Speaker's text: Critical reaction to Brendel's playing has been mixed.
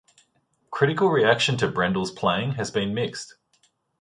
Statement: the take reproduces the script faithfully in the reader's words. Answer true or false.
true